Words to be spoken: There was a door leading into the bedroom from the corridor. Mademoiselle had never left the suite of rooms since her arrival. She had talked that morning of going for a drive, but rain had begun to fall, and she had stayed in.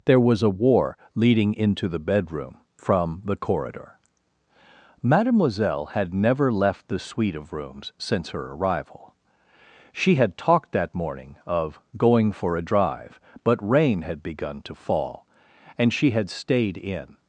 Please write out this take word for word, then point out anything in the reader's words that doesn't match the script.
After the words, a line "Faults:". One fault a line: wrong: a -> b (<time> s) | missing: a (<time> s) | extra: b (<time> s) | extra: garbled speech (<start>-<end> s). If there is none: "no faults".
There was a war leading into the bedroom from the corridor. Mademoiselle had never left the suite of rooms since her arrival. She had talked that morning of going for a drive, but rain had begun to fall, and she had stayed in.
Faults:
wrong: door -> war (0.5 s)